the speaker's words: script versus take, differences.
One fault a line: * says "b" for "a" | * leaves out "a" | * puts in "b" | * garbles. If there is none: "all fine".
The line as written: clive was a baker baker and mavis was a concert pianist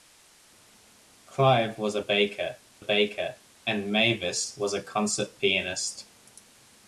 all fine